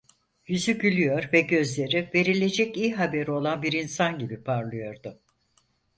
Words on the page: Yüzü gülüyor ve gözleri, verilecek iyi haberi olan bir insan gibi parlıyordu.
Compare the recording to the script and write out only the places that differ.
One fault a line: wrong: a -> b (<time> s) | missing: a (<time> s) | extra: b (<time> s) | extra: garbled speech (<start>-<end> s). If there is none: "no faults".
no faults